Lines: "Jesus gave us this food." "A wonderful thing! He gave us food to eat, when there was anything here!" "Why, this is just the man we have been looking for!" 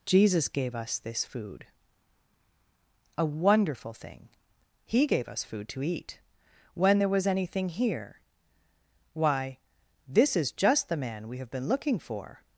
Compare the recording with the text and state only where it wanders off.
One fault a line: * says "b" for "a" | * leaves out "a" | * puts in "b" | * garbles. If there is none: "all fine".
all fine